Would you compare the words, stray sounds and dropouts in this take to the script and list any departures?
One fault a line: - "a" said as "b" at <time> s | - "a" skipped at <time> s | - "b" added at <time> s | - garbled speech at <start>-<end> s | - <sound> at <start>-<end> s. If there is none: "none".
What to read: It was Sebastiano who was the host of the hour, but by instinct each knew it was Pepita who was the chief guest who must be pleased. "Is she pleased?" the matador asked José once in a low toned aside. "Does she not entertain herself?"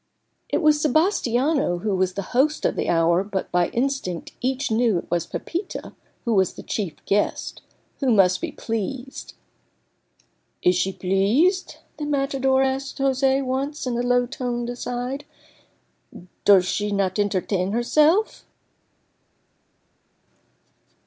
none